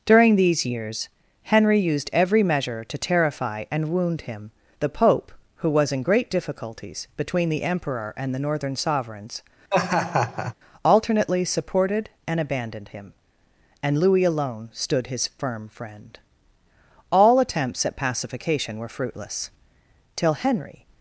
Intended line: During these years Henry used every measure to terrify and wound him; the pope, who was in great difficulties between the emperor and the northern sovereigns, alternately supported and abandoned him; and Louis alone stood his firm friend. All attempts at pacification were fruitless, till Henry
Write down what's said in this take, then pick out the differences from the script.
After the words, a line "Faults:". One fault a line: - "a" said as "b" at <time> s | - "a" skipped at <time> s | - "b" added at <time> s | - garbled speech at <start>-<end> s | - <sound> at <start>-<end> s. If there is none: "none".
During these years Henry used every measure to terrify and wound him; the pope, who was in great difficulties between the emperor and the northern sovereigns, alternately supported and abandoned him; and Louis alone stood his firm friend. All attempts at pacification were fruitless, till Henry
Faults:
- laugh at 9.7-10.5 s